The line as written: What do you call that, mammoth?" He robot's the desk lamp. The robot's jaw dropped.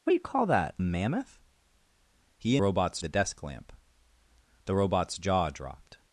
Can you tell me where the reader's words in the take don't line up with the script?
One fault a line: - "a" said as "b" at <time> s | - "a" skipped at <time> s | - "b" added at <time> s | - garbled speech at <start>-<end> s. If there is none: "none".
none